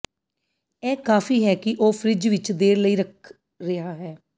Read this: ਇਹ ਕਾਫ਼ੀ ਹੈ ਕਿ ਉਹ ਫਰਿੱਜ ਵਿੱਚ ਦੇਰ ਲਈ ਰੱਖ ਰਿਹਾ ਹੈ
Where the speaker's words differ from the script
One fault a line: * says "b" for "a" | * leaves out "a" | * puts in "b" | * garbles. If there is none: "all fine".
all fine